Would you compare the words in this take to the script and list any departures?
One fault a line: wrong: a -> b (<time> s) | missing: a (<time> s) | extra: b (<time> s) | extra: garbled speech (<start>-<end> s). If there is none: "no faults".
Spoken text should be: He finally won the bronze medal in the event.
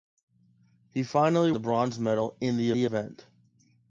missing: won (1.5 s)
extra: the (2.7 s)